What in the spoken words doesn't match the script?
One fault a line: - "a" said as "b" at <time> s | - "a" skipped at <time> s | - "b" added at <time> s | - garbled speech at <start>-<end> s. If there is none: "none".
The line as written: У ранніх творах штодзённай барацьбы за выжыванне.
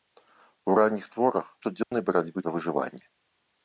none